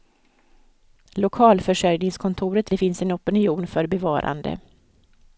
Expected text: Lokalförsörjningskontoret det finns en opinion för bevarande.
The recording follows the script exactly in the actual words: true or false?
true